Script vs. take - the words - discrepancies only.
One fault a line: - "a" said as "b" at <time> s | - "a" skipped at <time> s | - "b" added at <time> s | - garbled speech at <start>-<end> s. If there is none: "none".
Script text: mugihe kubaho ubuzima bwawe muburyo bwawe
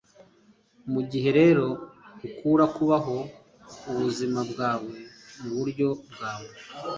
- "rero ukura" added at 1.4 s